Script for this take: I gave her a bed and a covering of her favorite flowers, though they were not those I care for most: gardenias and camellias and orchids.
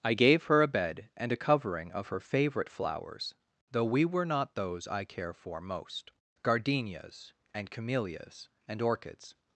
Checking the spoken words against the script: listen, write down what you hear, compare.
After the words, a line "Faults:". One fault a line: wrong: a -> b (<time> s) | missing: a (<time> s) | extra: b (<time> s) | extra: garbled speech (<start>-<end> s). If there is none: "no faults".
I gave her a bed and a covering of her favorite flowers, though we were not those I care for most: gardenias and camellias and orchids.
Faults:
wrong: they -> we (3.9 s)